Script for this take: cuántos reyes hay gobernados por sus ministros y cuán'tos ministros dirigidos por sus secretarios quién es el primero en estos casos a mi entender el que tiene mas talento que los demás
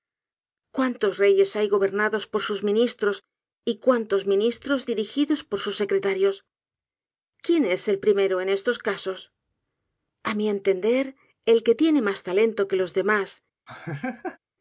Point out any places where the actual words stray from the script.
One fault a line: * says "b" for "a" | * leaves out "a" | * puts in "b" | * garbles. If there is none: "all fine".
all fine